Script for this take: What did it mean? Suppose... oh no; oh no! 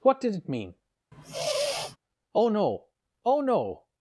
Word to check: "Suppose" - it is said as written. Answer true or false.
false